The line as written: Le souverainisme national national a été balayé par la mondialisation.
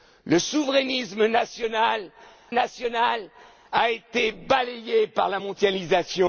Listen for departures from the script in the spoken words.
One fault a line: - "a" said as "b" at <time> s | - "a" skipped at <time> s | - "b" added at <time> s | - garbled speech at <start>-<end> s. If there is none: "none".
none